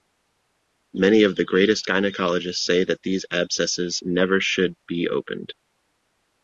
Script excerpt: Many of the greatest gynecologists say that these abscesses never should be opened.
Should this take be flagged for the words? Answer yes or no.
no